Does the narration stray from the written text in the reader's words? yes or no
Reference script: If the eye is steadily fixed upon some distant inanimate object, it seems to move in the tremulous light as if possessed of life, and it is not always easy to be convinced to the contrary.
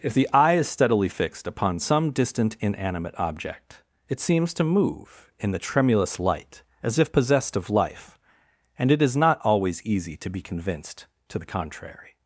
no